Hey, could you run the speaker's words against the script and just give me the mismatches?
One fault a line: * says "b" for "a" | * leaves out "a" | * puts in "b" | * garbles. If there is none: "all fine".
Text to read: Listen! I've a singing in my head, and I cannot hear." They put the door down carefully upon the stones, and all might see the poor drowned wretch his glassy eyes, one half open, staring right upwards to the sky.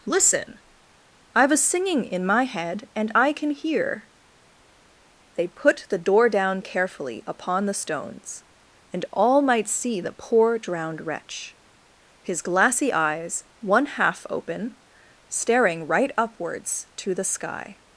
* says "can" for "cannot"